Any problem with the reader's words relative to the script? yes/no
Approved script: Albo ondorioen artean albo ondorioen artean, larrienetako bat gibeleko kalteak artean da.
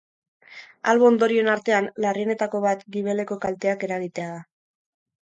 yes